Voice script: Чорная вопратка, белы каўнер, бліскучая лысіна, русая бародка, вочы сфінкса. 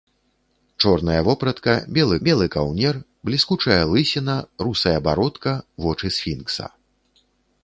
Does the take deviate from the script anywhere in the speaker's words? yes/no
yes